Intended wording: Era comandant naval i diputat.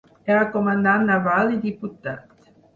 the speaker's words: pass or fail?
pass